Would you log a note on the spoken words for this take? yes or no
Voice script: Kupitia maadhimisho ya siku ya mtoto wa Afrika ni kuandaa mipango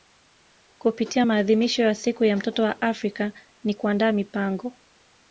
no